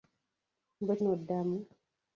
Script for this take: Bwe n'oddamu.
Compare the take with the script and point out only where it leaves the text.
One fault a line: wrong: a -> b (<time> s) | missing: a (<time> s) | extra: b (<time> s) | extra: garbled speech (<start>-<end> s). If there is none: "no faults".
no faults